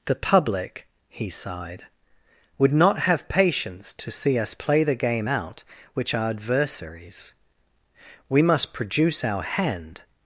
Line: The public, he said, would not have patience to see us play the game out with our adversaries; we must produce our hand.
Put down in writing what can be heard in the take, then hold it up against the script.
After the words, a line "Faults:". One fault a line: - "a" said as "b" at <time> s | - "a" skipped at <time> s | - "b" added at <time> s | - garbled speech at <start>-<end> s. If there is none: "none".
The public, he sighed, would not have patience to see us play the game out which our adversaries; we must produce our hand.
Faults:
- "said" said as "sighed" at 1.3 s
- "with" said as "which" at 5.9 s